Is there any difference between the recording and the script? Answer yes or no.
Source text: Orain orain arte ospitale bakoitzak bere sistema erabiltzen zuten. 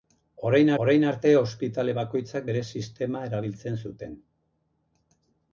no